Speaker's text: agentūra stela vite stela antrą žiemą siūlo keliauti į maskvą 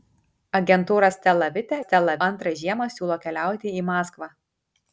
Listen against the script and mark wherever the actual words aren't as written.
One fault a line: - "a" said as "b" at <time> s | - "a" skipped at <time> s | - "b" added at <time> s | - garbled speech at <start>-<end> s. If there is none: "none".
none